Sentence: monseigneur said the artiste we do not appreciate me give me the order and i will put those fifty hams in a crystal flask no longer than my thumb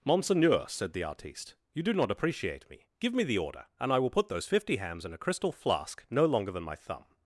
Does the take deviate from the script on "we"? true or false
true